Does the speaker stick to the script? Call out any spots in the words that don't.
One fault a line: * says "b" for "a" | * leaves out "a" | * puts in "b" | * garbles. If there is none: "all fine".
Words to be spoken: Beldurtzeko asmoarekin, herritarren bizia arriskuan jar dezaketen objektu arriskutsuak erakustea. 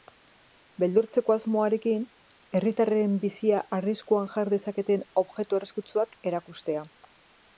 all fine